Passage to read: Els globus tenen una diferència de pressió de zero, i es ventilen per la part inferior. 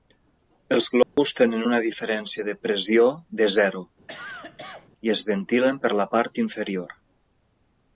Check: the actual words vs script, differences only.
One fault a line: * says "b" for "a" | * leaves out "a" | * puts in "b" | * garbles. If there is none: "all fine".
all fine